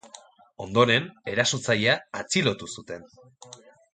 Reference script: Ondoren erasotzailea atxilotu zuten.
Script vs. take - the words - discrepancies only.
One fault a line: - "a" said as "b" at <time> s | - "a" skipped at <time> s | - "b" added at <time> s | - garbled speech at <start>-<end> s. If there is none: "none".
none